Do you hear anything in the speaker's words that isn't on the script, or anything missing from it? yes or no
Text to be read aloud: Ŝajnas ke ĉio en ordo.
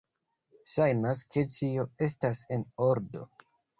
yes